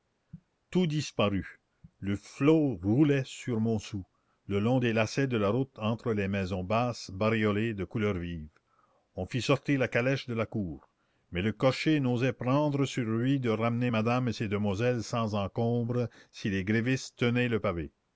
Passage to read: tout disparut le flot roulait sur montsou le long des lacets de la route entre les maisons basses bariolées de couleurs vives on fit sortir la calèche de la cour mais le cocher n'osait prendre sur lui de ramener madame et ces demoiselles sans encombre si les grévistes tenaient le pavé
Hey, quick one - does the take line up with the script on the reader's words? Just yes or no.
yes